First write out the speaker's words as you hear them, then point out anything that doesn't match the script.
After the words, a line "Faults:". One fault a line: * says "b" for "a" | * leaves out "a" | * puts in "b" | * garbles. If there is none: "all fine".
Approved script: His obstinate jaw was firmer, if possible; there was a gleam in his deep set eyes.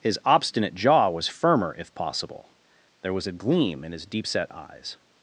His obstinate jaw was firmer, if possible; there was a gleam in his deep set eyes.
Faults:
all fine